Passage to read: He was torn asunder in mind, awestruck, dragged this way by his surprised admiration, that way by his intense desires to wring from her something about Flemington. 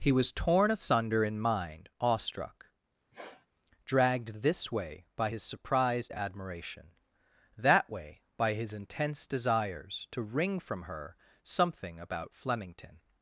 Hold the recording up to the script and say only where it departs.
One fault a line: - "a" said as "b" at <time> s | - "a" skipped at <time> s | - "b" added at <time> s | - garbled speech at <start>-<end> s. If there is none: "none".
none